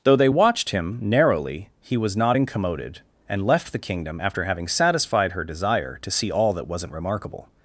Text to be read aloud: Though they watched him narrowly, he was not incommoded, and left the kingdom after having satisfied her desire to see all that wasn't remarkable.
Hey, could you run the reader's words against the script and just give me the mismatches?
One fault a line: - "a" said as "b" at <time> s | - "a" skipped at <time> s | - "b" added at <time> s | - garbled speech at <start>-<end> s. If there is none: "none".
none